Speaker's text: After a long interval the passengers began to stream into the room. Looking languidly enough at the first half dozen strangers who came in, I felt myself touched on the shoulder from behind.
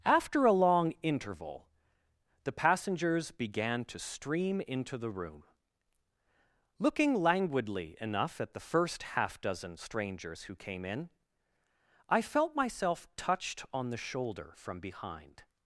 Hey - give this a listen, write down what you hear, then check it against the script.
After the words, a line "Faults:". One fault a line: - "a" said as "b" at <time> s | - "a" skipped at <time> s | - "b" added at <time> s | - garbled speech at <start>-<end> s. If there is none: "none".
After a long interval the passengers began to stream into the room. Looking languidly enough at the first half dozen strangers who came in, I felt myself touched on the shoulder from behind.
Faults:
none